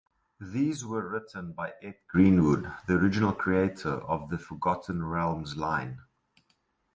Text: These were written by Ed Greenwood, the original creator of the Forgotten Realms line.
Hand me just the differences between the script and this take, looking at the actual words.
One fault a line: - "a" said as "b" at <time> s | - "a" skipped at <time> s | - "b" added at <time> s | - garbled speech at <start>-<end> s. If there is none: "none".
none